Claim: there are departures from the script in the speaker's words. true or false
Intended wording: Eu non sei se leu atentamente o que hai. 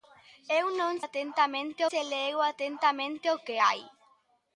true